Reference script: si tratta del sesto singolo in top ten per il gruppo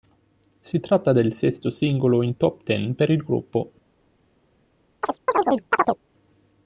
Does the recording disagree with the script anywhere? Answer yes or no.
no